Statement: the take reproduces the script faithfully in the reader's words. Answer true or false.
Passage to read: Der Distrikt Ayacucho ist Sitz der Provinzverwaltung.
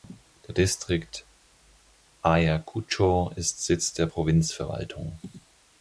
true